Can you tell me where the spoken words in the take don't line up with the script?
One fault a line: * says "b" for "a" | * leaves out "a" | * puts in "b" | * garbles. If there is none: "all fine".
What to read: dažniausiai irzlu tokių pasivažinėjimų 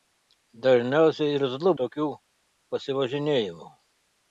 all fine